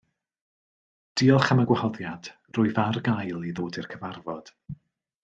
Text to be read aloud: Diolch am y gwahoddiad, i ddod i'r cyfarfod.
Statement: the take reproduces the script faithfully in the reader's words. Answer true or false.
false